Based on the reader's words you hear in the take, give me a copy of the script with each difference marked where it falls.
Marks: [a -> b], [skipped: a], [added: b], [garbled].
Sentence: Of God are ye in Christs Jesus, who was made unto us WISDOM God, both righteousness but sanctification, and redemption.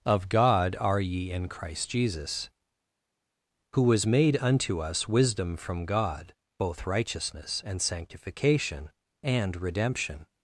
Of God are ye in [Christs -> Christ] Jesus, who was made unto us WISDOM [added: from] God, both righteousness [but -> and] sanctification, and redemption.